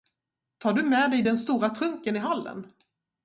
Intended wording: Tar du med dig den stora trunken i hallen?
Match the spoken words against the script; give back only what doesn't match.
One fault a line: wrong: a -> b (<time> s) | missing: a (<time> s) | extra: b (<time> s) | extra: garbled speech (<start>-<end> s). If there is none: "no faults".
no faults